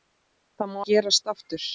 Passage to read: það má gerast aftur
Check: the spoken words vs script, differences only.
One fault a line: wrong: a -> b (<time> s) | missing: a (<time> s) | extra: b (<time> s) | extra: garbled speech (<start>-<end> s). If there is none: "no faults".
no faults